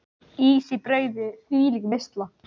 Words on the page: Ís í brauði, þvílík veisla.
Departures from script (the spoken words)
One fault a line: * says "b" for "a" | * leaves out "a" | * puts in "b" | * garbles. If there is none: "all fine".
all fine